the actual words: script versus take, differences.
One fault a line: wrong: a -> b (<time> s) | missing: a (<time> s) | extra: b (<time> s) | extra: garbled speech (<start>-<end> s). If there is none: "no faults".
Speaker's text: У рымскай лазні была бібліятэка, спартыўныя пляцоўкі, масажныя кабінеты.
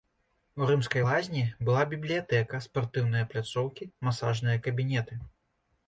no faults